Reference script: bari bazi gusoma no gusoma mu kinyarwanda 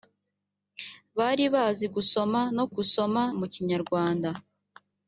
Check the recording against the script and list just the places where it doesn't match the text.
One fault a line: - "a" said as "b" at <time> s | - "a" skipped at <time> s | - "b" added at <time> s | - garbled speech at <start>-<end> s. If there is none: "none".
none